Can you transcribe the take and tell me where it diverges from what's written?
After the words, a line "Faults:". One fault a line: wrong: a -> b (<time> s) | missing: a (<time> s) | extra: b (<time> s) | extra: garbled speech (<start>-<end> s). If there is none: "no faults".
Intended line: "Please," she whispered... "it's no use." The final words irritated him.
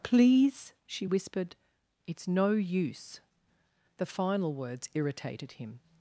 "Please," she whispered... "it's no use." The final words irritated him.
Faults:
no faults